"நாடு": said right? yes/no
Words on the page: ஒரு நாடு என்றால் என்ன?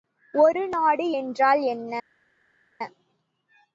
yes